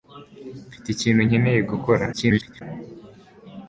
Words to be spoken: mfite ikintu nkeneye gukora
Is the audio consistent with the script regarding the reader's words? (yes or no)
no